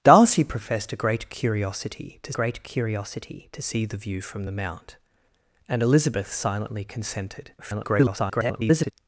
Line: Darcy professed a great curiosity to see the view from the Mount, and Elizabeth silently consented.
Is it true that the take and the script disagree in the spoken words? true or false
true